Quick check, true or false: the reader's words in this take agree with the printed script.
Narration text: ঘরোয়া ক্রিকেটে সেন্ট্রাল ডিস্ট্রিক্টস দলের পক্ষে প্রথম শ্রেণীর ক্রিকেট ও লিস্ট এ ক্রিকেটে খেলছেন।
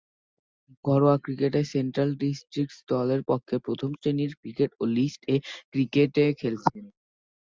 true